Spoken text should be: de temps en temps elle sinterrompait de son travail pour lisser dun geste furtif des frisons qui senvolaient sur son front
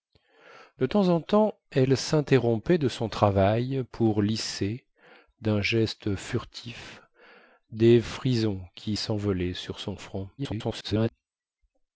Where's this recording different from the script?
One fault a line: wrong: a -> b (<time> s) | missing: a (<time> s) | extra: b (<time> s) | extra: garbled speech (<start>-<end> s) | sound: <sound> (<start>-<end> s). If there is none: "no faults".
extra: garbled speech (10.4-11.1 s)